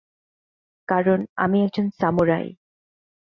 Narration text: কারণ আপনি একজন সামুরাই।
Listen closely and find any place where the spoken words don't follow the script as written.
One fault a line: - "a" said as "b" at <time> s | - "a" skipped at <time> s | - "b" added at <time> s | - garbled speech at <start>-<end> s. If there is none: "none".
- "আপনি" said as "আমি" at 1.4 s